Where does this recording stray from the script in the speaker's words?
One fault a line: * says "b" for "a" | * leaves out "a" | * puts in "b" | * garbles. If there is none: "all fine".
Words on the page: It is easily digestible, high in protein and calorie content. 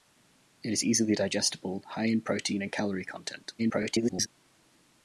* garbles